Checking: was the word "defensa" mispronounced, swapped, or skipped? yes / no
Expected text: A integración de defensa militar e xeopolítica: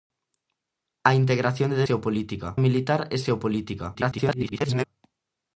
yes